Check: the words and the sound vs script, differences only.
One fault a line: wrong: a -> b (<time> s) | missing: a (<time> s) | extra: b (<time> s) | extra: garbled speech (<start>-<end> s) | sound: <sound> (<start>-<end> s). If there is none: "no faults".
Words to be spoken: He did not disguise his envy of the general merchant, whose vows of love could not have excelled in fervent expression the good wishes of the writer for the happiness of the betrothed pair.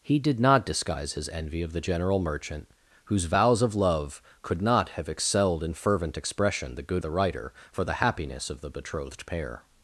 missing: wishes of (7.0 s)